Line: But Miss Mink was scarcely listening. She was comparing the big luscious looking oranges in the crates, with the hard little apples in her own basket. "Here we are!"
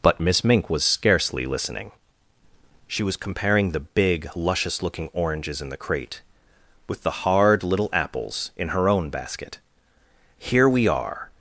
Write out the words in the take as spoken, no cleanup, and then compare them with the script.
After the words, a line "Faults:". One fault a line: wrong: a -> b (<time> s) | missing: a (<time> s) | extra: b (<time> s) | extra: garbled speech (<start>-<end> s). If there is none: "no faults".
But Miss Mink was scarcely listening. She was comparing the big luscious looking oranges in the crate, with the hard little apples in her own basket. "Here we are!"
Faults:
wrong: crates -> crate (5.8 s)